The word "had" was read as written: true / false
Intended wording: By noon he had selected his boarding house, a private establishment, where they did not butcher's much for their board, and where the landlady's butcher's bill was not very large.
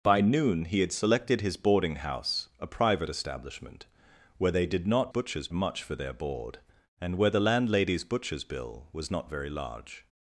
true